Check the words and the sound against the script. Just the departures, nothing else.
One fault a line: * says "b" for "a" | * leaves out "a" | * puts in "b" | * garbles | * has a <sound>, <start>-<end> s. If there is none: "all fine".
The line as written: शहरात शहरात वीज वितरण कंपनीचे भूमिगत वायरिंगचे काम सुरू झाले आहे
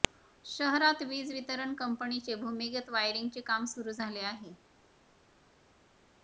* leaves out "शहरात"